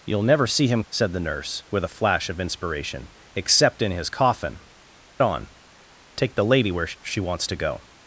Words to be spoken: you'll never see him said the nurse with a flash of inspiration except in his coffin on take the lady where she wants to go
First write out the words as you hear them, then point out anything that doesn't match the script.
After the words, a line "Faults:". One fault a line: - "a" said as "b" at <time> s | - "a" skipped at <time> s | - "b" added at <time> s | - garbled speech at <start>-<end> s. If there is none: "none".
you'll never see him said the nurse with a flash of inspiration except in his coffin on take the lady where she wants to go
Faults:
none